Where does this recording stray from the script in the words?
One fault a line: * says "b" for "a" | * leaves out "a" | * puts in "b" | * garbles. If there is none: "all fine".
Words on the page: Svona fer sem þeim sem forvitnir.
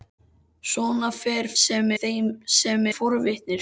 all fine